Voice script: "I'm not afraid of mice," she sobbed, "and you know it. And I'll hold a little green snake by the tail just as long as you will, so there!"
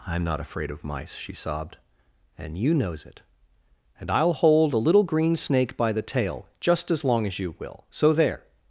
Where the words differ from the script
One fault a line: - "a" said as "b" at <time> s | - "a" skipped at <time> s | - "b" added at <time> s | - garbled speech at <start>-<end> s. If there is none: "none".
- "know" said as "knows" at 2.7 s